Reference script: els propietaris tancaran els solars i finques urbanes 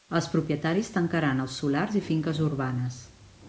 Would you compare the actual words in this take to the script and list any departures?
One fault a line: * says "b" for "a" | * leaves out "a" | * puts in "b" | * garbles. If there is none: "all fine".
all fine